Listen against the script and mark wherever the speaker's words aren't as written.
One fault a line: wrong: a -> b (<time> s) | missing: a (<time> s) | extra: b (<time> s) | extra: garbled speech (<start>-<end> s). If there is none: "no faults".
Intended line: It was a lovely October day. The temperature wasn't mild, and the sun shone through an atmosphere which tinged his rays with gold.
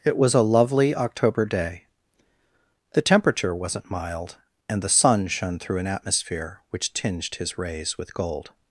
no faults